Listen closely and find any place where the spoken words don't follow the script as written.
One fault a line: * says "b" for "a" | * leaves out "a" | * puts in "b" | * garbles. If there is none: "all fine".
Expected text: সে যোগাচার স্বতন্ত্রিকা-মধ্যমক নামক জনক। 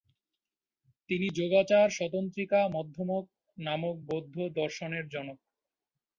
* says "তিনি" for "সে"
* puts in "বৌদ্ধ দর্শনের"